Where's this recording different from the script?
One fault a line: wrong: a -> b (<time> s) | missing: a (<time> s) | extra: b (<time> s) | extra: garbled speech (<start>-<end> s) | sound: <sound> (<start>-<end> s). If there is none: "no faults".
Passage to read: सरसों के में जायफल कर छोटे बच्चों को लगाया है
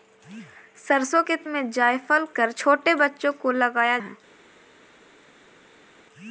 no faults